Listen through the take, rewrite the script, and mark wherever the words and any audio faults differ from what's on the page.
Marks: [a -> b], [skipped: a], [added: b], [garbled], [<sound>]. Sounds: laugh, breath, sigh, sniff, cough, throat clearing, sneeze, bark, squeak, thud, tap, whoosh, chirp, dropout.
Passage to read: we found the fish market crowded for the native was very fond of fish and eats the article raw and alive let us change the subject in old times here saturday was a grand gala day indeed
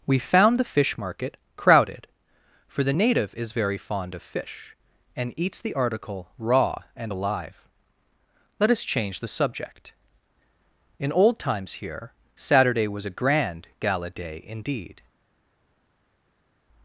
we found the fish market crowded for the native [was -> is] very fond of fish and eats the article raw and alive let us change the subject in old times here saturday was a grand gala day indeed